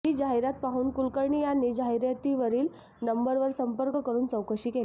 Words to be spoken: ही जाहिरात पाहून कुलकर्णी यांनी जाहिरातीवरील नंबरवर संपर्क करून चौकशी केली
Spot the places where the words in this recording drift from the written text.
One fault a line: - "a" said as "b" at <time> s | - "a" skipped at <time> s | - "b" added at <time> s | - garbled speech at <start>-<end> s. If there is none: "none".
none